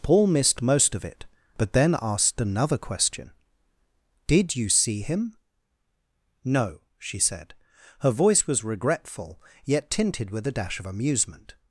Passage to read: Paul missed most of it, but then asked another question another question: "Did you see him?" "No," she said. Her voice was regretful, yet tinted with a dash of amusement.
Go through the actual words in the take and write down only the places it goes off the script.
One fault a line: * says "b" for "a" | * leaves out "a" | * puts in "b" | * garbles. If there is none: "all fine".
* leaves out "another question"